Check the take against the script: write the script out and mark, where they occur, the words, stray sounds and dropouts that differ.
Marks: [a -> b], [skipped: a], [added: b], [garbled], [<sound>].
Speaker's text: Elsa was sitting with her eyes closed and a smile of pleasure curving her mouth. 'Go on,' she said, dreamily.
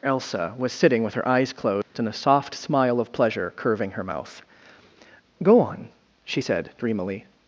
Elsa was sitting with her eyes closed [dropout] and a [added: soft] smile of pleasure curving her mouth. 'Go on,' she said, dreamily.